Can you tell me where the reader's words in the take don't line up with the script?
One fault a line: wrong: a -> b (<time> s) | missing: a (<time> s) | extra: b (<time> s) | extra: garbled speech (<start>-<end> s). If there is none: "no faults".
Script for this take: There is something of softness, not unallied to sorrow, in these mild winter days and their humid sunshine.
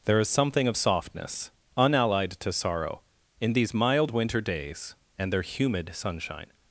missing: not (1.5 s)